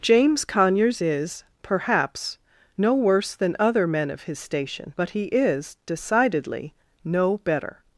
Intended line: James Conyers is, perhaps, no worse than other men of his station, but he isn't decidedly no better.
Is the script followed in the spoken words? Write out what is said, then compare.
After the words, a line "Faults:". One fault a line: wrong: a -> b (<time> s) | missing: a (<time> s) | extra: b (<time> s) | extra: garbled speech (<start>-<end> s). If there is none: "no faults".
James Conyers is, perhaps, no worse than other men of his station, but he is decidedly no better.
Faults:
wrong: isn't -> is (5.2 s)